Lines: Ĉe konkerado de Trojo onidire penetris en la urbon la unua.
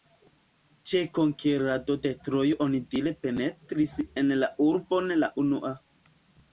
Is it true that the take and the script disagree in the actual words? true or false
false